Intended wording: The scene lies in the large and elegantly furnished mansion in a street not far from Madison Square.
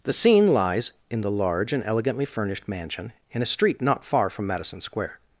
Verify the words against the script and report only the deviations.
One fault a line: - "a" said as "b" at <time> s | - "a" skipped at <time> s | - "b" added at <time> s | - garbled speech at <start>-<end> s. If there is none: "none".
none